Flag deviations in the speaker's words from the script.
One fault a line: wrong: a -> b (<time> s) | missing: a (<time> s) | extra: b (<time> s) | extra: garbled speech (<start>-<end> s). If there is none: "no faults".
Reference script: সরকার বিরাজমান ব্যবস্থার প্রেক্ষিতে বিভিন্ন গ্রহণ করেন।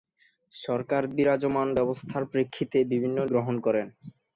no faults